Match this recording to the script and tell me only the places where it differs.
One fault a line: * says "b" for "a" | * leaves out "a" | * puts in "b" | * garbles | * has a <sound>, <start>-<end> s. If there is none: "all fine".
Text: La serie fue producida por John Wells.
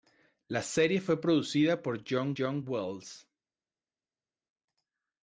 * puts in "John"